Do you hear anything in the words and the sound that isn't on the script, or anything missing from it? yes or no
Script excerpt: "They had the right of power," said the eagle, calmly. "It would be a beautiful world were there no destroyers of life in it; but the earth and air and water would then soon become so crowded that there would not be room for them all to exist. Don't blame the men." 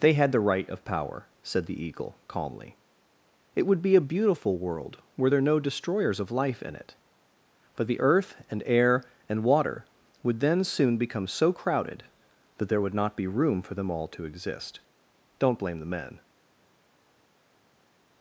no